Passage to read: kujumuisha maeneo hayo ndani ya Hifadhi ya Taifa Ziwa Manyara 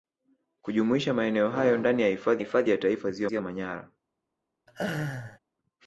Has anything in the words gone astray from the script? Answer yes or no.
yes